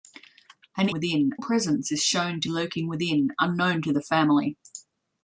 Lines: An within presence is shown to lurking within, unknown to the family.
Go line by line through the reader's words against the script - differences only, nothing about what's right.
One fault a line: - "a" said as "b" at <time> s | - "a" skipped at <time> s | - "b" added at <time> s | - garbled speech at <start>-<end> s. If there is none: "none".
none